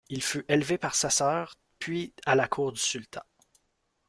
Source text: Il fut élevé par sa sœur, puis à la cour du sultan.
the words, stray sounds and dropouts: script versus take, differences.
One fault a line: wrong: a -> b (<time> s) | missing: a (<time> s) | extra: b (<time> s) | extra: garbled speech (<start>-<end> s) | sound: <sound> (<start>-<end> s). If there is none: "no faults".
no faults